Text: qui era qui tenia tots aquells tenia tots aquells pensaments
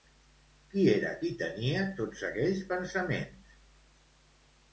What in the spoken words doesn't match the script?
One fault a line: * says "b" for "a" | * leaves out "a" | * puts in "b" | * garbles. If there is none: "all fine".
* leaves out "tenia tots aquells"